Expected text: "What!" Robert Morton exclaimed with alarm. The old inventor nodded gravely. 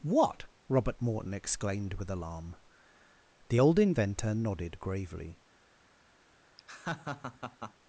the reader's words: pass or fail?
pass